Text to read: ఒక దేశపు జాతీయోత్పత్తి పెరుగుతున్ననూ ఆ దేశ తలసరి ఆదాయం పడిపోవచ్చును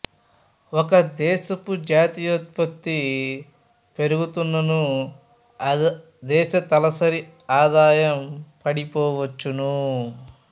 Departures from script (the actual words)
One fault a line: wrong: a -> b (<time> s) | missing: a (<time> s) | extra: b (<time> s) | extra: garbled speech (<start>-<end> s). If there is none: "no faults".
no faults